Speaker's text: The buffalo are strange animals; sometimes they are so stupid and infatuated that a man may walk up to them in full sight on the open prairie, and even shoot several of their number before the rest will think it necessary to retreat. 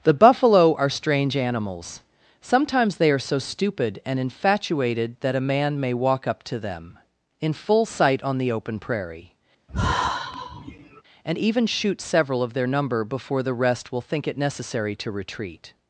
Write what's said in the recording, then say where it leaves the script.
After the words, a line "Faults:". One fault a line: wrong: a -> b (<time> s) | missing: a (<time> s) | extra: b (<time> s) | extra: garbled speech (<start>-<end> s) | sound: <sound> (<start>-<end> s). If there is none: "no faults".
The buffalo are strange animals; sometimes they are so stupid and infatuated that a man may walk up to them in full sight on the open prairie, and even shoot several of their number before the rest will think it necessary to retreat.
Faults:
sound: sigh (9.7-11.0 s)